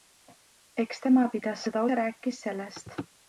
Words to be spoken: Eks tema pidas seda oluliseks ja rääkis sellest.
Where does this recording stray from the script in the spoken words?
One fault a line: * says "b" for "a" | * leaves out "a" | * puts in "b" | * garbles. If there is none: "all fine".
* leaves out "oluliseks"